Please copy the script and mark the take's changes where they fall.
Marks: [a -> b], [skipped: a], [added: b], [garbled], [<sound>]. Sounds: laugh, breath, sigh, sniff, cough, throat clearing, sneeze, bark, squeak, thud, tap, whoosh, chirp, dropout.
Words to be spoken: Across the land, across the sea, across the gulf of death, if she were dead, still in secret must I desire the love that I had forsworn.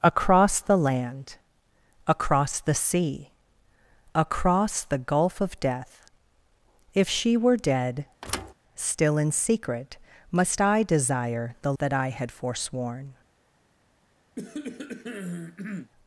Across the land, across the sea, across the gulf of death, if she were dead, [thud] still in secret must I desire the [skipped: love] that I had forsworn. [cough]